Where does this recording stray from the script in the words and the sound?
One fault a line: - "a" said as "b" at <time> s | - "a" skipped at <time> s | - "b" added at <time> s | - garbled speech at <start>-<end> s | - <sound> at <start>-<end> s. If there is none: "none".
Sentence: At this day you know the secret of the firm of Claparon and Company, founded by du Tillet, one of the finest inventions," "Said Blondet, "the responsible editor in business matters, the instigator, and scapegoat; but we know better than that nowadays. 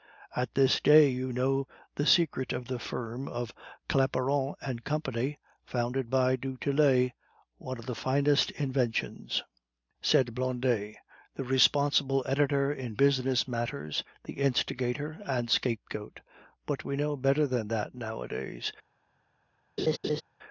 - laugh at 19.8-20.2 s